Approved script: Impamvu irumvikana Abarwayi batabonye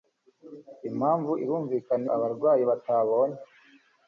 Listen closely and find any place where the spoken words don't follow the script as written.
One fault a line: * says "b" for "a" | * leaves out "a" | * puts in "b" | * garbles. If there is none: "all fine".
all fine